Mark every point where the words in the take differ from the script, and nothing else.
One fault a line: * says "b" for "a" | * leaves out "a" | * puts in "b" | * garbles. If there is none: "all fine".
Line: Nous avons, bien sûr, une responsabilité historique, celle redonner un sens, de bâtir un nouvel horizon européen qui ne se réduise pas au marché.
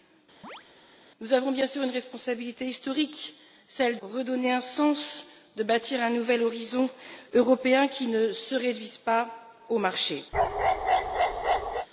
all fine